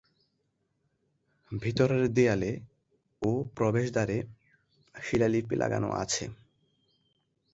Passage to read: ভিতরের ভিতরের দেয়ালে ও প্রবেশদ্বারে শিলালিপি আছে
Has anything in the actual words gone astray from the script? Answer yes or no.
yes